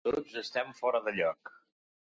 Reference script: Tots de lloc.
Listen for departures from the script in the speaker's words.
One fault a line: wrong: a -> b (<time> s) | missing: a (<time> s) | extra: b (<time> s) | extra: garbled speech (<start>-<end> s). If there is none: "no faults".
extra: estem fora (0.4 s)